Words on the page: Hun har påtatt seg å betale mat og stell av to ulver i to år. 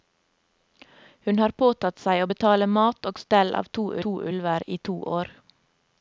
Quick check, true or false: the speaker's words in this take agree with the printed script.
false